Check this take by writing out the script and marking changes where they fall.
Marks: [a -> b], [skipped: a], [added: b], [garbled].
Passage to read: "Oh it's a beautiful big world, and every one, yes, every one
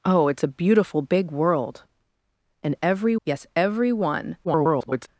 "Oh it's a beautiful big world, and every [skipped: one,] yes, every one [garbled]